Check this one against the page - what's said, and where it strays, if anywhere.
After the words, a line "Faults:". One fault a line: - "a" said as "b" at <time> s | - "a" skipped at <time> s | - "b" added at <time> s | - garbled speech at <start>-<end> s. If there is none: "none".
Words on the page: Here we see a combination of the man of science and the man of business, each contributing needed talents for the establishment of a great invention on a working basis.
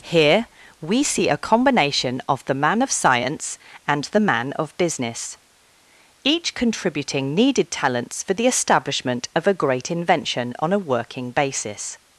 Here we see a combination of the man of science and the man of business, each contributing needed talents for the establishment of a great invention on a working basis.
Faults:
none